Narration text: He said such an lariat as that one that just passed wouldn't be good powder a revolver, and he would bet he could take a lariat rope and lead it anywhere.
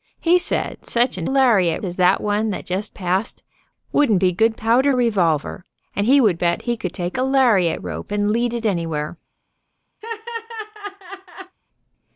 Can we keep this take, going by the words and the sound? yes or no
no